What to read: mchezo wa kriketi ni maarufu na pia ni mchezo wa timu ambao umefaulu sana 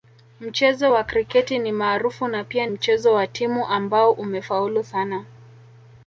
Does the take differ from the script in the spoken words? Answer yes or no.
yes